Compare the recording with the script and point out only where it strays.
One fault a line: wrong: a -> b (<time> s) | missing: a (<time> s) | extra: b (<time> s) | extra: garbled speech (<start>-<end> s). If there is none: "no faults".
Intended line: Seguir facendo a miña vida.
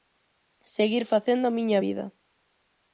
no faults